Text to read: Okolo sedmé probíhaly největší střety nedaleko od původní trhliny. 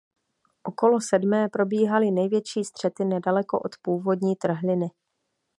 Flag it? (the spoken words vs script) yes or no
no